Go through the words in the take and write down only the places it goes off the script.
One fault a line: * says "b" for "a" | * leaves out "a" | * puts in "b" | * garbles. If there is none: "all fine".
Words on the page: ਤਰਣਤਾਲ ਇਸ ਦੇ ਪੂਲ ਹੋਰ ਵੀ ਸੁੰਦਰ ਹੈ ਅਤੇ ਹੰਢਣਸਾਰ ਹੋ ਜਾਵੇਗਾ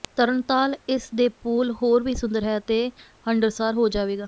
all fine